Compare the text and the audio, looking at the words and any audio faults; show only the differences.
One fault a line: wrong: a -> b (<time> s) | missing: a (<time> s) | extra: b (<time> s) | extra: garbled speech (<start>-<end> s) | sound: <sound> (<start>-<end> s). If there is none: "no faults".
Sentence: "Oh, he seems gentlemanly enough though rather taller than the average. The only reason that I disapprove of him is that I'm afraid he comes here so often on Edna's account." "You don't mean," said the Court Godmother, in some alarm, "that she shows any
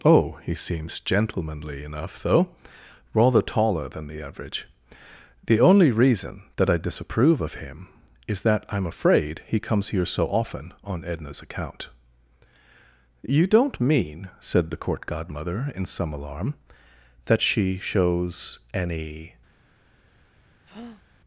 sound: breath (20.6-21.0 s)